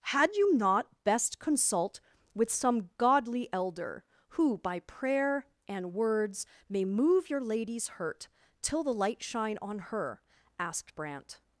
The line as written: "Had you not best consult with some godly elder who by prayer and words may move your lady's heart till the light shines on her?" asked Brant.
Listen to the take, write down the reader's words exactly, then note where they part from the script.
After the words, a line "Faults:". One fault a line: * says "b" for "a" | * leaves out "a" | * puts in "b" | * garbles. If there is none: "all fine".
"Had you not best consult with some godly elder who by prayer and words may move your lady's hurt till the light shine on her?" asked Brant.
Faults:
* says "hurt" for "heart"
* says "shine" for "shines"